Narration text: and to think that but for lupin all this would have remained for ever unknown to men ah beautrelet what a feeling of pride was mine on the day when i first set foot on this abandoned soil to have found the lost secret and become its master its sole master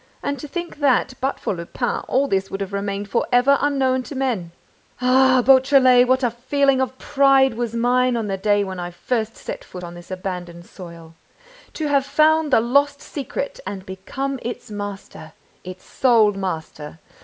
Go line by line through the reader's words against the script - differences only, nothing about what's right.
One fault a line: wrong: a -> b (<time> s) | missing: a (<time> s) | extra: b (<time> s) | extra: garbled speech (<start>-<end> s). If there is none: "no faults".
no faults